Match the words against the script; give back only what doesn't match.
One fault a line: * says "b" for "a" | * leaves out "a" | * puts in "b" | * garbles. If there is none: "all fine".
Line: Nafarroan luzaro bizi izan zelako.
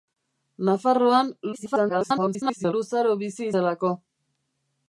* garbles
* leaves out "izan"